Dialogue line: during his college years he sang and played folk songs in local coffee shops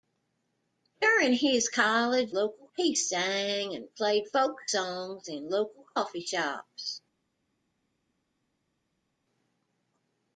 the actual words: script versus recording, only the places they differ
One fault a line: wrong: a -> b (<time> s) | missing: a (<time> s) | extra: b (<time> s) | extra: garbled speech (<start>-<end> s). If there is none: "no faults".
wrong: years -> local (2.3 s)